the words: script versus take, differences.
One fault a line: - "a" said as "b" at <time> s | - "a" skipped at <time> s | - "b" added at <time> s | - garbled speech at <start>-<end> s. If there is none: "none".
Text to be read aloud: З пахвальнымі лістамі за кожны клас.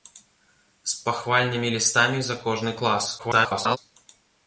- garbled speech at 3.2-3.8 s